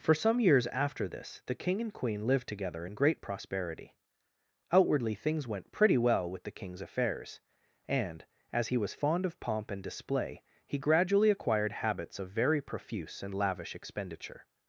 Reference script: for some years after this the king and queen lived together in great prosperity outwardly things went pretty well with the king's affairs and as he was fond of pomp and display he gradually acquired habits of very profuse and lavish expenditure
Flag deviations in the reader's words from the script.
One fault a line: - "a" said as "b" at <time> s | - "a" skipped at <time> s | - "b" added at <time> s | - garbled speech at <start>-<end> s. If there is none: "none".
none